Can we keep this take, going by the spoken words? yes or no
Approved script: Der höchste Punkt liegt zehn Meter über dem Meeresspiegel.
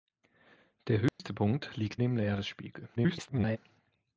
no